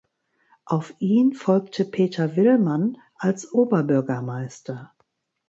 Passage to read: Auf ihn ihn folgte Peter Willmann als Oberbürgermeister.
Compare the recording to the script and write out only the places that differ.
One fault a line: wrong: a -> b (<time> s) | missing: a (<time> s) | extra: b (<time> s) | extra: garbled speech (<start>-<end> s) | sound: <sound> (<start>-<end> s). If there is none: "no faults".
missing: ihn (1.3 s)